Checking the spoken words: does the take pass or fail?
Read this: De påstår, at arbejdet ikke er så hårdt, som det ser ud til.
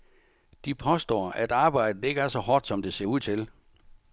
pass